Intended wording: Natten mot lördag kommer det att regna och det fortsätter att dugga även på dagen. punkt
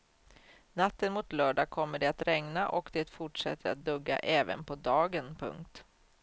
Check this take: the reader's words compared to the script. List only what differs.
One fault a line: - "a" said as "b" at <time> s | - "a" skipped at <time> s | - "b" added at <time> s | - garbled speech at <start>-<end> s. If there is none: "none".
none